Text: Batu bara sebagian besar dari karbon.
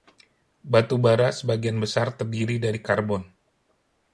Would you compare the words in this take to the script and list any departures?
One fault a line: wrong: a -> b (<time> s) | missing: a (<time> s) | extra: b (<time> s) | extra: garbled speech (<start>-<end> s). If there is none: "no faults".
extra: terdiri (2.2 s)